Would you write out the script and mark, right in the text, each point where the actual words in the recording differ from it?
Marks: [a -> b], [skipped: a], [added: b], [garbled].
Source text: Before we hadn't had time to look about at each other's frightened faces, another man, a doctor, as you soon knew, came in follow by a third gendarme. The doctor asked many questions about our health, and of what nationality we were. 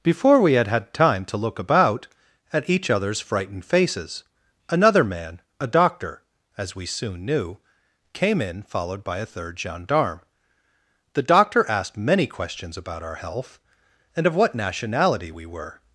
Before we [hadn't -> had] had time to look about at each other's frightened faces, another man, a doctor, as [you -> we] soon knew, came in [follow -> followed] by a third gendarme. The doctor asked many questions about our health, and of what nationality we were.